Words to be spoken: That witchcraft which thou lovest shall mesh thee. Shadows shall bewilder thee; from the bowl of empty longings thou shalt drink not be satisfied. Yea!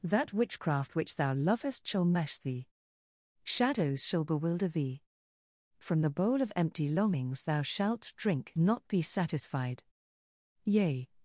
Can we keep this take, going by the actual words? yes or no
yes